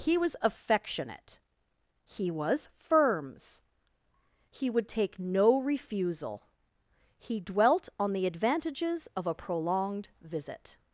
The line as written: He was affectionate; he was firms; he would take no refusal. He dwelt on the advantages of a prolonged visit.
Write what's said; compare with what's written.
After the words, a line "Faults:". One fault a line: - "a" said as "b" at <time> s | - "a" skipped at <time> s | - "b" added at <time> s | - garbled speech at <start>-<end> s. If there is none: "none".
He was affectionate; he was firms; he would take no refusal. He dwelt on the advantages of a prolonged visit.
Faults:
none